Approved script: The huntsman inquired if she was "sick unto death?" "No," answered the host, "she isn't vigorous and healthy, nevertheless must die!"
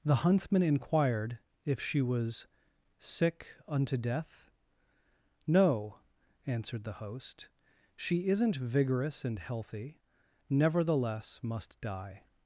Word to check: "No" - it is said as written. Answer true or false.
true